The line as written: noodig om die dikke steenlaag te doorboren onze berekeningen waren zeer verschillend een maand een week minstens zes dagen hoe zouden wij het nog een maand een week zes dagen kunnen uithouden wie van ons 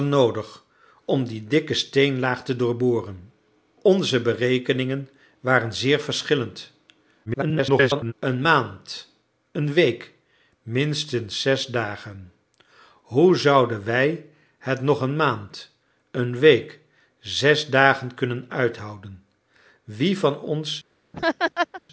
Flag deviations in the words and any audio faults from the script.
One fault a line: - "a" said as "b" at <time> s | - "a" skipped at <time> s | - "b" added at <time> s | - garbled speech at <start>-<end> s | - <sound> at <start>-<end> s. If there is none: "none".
- garbled speech at 7.3-8.1 s
- laugh at 21.1-21.8 s